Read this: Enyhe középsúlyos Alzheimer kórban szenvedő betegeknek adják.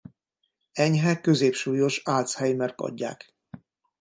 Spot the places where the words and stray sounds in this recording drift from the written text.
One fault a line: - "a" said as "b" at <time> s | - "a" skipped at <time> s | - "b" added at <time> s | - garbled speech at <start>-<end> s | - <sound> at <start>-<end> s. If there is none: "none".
- "kórban szenvedő betegeknek" skipped at 2.8 s